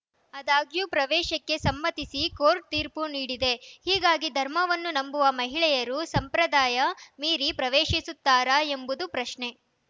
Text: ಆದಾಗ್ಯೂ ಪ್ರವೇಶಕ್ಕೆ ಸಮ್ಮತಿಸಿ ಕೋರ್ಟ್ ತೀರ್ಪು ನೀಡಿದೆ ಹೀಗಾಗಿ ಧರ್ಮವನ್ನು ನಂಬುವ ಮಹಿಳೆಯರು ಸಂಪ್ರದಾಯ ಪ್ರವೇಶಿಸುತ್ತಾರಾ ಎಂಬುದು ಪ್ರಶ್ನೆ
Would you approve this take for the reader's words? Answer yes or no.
no